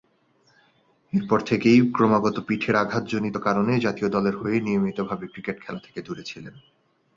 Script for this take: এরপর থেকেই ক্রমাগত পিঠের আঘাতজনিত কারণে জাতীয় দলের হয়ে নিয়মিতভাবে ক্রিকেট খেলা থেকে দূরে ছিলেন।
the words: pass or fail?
pass